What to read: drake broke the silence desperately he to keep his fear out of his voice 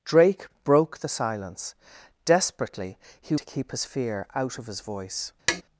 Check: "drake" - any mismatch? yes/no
no